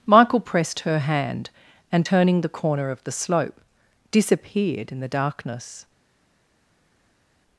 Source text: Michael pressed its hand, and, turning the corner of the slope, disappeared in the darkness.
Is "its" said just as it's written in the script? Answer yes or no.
no